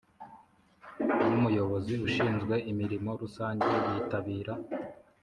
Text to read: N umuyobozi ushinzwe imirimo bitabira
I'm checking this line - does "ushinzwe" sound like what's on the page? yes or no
yes